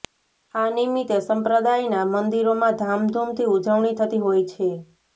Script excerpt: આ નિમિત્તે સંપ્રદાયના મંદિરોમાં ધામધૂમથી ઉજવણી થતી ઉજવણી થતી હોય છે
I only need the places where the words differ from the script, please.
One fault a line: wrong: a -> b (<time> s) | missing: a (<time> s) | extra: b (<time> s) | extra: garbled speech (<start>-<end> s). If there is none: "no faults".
missing: ઉજવણી થતી (4.3 s)